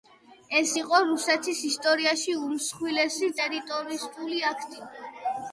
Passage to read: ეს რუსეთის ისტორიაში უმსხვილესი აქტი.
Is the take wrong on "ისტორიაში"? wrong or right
right